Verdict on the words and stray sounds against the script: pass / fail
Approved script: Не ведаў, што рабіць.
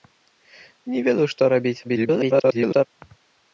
fail